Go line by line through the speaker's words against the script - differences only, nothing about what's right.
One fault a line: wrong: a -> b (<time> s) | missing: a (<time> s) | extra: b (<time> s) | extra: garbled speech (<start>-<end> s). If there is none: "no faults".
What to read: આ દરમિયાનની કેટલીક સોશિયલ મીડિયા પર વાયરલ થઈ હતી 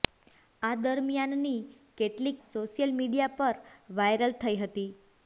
no faults